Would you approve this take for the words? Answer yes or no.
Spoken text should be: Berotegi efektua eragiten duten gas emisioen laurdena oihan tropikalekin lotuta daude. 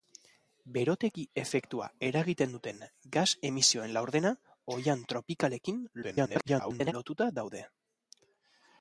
no